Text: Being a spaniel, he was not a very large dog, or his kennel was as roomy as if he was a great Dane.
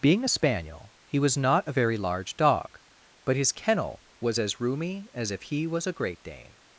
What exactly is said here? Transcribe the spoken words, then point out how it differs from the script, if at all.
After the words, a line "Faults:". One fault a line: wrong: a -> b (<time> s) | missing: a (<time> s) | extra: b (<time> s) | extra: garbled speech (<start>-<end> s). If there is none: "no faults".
Being a spaniel, he was not a very large dog, but his kennel was as roomy as if he was a great Dane.
Faults:
wrong: or -> but (3.3 s)